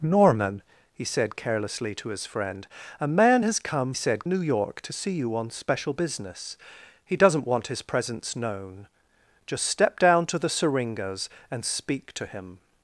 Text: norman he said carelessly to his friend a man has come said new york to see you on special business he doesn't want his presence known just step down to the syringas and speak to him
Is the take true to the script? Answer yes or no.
yes